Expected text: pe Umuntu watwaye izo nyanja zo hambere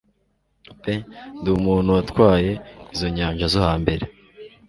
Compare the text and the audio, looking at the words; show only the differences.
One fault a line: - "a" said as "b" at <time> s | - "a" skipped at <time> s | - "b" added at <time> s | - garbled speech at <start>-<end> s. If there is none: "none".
- "Ndi" added at 1.4 s